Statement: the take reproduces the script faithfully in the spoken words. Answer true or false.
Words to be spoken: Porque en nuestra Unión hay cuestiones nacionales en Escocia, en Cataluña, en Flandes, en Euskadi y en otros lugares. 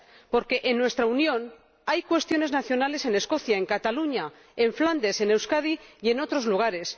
true